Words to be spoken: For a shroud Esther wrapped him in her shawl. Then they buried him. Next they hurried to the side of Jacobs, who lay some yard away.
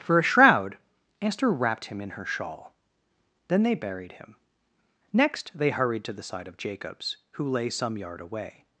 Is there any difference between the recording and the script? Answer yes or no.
no